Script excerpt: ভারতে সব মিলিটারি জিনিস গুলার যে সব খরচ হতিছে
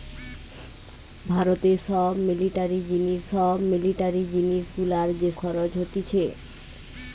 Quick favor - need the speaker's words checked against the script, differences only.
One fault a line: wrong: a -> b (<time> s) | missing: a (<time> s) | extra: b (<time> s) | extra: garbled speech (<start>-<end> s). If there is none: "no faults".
extra: সব মিলিটারি জিনিস (3.3 s)
missing: সব (5.3 s)